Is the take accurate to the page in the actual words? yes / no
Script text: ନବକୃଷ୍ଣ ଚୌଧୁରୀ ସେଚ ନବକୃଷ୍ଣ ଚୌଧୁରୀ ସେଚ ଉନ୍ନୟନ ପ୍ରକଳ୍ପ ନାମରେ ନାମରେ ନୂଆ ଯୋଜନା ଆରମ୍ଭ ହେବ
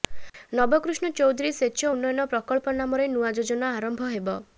no